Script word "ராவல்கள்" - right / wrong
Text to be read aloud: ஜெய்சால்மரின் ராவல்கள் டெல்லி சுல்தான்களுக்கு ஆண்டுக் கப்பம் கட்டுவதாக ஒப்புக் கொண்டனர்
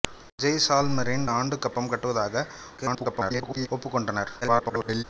wrong